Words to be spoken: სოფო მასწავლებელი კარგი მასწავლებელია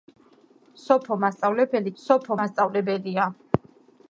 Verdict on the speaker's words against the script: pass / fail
fail